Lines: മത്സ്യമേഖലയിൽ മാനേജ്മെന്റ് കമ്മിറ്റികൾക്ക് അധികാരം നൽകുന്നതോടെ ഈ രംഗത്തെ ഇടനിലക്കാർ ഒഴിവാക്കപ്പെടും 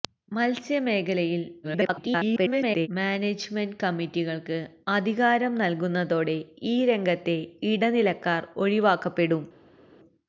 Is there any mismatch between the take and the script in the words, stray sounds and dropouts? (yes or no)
yes